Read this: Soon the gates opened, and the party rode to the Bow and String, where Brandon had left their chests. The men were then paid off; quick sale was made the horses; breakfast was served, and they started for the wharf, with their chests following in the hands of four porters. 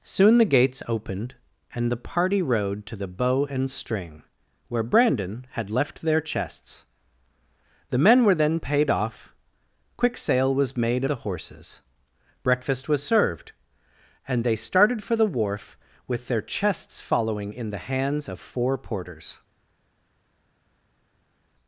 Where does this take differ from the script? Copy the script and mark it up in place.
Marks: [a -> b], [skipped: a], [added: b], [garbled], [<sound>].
Soon the gates opened, and the party rode to the Bow and String, where Brandon had left their chests. The men were then paid off; quick sale was made the horses; breakfast was served, and they started for the wharf, with their chests following in the hands of four porters.